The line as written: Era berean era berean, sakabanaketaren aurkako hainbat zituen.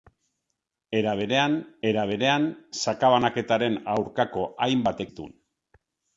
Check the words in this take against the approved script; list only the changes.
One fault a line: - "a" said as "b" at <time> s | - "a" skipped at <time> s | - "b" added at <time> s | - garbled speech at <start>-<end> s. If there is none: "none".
none